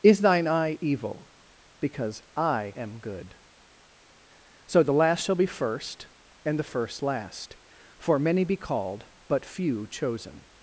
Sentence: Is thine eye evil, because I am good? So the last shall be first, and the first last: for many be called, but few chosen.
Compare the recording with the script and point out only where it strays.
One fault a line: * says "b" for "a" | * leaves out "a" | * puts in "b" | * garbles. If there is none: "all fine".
all fine